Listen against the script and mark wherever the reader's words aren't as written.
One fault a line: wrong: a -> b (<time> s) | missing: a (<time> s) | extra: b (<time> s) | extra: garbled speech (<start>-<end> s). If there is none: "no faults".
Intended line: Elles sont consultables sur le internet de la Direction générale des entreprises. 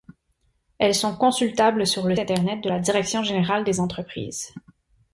no faults